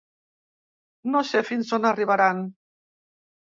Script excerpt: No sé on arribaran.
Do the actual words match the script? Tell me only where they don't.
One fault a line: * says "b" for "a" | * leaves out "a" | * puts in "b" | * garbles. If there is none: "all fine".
* puts in "fins"